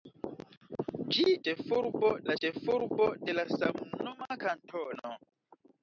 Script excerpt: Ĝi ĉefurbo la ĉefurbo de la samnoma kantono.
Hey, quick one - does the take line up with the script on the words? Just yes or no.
yes